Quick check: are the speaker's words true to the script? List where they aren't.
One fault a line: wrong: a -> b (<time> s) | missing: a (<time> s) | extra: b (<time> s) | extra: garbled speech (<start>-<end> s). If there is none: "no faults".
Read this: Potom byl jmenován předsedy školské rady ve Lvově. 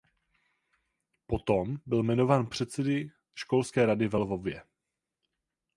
no faults